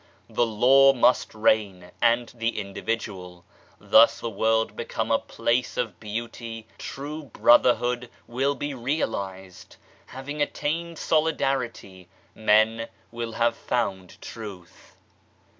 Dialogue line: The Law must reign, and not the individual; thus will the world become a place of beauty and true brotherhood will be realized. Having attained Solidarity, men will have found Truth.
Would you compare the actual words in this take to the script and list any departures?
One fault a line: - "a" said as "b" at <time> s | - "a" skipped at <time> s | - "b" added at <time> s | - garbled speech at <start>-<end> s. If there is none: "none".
- "not" skipped at 2.3 s
- "will" skipped at 4.2 s
- "and" skipped at 6.7 s